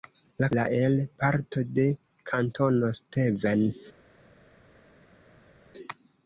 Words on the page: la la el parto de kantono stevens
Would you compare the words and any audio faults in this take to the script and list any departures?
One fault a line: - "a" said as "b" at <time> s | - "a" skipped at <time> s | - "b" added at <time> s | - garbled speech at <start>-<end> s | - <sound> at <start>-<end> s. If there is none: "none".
none